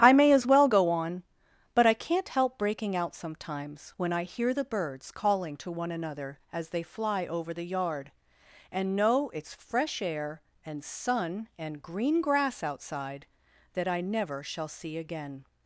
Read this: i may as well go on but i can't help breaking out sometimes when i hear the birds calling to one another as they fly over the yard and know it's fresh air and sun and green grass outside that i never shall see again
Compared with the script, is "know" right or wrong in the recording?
right